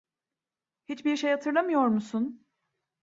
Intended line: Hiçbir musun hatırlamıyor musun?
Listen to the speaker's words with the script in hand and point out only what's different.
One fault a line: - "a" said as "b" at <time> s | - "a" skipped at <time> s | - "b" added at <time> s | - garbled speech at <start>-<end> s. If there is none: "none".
- "musun" said as "şey" at 1.2 s